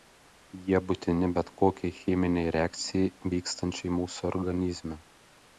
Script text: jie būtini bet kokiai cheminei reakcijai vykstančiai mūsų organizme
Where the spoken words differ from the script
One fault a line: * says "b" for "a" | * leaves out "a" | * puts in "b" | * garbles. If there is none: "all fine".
all fine